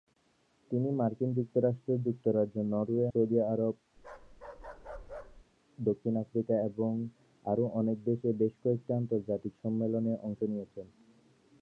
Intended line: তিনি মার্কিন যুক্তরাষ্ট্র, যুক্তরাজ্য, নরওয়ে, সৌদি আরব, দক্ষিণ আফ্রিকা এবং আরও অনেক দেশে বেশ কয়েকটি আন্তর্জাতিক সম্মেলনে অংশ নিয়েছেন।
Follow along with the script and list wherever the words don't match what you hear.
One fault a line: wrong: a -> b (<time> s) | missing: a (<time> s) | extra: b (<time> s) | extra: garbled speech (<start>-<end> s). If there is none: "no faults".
no faults